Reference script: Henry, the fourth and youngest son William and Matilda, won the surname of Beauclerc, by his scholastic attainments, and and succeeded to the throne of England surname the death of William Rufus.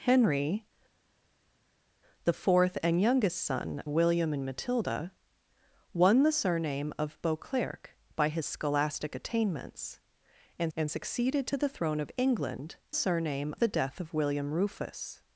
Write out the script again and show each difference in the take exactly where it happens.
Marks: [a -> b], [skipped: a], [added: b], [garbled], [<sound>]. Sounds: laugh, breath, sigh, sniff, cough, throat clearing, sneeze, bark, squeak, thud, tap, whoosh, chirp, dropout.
Henry, the fourth and youngest son William and Matilda, won the surname of Beauclerc, by his scholastic attainments, and and succeeded to the throne of England surname the death of William Rufus.